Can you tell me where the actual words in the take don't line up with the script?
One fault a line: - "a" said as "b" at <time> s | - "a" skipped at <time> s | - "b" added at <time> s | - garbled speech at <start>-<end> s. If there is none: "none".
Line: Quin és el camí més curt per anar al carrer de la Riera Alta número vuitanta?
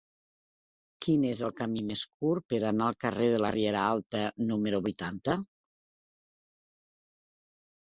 none